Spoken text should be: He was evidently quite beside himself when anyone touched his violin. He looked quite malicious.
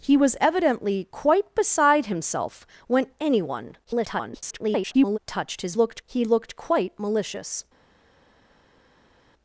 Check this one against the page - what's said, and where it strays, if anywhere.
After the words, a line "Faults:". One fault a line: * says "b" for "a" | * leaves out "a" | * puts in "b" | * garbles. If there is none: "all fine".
He was evidently quite beside himself when anyone [garbled] touched his looked. He looked quite malicious.
Faults:
* garbles
* says "looked" for "violin"